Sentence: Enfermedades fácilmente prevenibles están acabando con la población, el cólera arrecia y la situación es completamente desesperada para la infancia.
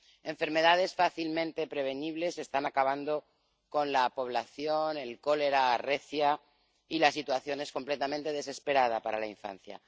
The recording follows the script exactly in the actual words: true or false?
true